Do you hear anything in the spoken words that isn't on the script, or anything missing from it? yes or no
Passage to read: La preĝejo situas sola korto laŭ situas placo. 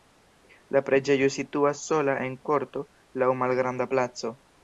yes